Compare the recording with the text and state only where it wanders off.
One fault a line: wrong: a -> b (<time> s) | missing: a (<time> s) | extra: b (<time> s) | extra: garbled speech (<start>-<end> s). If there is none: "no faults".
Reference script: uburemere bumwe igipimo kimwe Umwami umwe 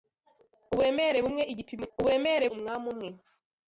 wrong: kimwe -> uburemere (2.0 s)